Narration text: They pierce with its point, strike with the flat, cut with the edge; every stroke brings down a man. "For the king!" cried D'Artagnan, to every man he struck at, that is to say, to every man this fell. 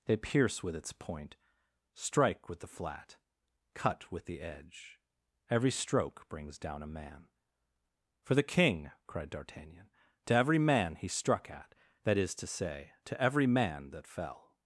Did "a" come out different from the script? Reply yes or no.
no